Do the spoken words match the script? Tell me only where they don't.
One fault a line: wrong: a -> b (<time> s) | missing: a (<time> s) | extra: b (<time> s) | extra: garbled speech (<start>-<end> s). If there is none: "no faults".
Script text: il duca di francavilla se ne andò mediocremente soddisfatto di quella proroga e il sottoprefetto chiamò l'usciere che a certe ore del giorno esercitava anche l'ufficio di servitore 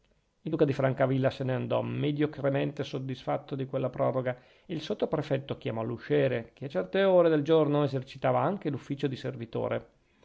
no faults